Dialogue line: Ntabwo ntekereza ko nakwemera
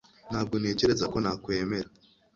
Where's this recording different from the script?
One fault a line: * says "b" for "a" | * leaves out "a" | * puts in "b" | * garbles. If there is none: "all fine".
all fine